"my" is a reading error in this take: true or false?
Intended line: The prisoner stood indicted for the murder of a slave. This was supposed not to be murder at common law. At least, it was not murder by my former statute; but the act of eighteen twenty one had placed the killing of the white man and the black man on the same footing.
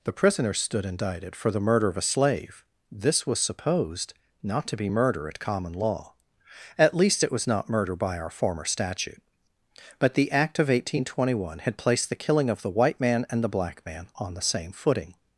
true